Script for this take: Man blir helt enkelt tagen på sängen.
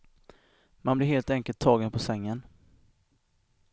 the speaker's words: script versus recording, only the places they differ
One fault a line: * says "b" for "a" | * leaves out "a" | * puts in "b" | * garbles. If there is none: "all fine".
all fine